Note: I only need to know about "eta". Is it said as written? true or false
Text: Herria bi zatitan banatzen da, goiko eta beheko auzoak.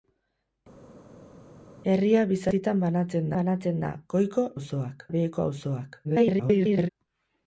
false